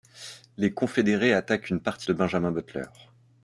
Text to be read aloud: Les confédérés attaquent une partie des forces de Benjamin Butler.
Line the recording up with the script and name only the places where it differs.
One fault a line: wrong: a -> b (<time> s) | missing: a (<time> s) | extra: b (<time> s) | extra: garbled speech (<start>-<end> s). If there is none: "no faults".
missing: des forces (2.1 s)